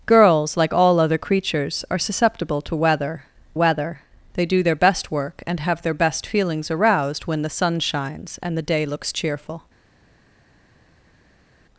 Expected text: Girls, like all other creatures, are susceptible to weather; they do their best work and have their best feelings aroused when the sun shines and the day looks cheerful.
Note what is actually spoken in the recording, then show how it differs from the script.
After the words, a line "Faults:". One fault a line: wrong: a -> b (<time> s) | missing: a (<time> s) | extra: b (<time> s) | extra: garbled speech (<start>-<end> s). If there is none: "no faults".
Girls, like all other creatures, are susceptible to weather weather; they do their best work and have their best feelings aroused when the sun shines and the day looks cheerful.
Faults:
extra: weather (3.5 s)